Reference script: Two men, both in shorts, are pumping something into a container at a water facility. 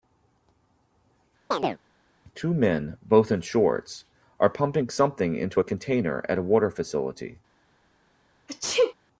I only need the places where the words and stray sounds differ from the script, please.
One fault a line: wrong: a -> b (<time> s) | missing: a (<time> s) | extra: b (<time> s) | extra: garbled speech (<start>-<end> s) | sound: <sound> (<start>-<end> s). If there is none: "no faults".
sound: chirp (1.5-1.8 s)
sound: sneeze (8.5-8.9 s)